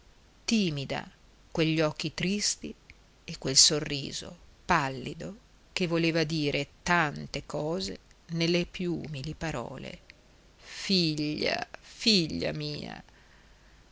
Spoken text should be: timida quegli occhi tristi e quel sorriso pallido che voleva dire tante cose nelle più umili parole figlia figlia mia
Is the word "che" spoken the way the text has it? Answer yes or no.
yes